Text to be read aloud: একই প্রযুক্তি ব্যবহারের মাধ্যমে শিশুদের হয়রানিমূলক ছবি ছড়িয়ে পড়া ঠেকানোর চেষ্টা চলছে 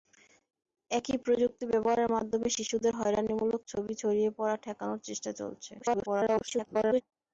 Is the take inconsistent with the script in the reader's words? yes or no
yes